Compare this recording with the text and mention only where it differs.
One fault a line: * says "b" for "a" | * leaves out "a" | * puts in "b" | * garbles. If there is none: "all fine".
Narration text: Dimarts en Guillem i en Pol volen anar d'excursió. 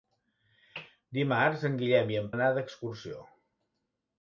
* leaves out "Pol volen"